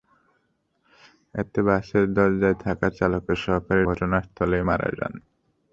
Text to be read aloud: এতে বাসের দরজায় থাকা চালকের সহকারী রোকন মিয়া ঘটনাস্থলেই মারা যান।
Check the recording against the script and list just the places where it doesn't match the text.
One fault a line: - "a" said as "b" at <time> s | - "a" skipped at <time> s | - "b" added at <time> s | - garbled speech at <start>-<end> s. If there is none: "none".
- "রোকন মিয়া" skipped at 3.8 s